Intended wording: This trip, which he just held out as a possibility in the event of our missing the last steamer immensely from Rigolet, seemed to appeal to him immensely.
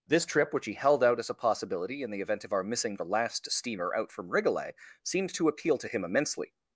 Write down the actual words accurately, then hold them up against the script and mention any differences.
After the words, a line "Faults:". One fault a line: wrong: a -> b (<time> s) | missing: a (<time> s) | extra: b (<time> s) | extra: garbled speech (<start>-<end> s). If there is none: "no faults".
This trip, which he held out as a possibility in the event of our missing the last steamer out from Rigolet, seemed to appeal to him immensely.
Faults:
missing: just (0.7 s)
wrong: immensely -> out (4.0 s)